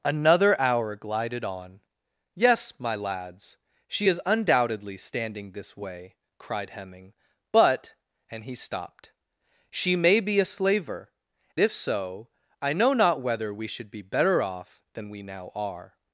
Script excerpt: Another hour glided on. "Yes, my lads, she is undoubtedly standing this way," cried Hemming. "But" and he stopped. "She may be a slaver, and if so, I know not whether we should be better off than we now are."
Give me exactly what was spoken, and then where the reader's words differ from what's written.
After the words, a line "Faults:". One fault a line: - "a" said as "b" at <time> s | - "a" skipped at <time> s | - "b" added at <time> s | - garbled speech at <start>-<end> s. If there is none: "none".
Another hour glided on. "Yes, my lads, she is undoubtedly standing this way," cried Hemming. "But" and he stopped. "She may be a slaver, if so, I know not whether we should be better off than we now are."
Faults:
- "and" skipped at 11.1 s